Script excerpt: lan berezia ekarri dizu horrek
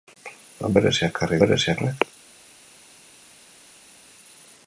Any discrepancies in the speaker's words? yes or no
yes